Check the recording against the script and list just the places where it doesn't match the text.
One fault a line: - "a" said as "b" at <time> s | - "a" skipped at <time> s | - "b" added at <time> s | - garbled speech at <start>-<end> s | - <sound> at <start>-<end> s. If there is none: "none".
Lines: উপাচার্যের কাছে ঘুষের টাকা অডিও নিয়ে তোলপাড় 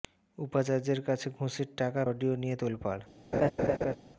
- laugh at 3.3-4.0 s